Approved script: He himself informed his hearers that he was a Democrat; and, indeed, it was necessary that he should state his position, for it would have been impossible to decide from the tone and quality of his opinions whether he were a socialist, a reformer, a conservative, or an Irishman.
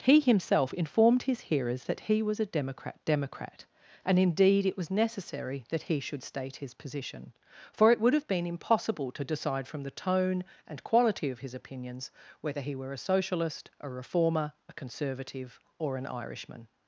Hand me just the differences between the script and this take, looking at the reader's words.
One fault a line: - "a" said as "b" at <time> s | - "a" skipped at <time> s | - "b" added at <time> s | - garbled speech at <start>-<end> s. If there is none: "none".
- "Democrat" added at 3.0 s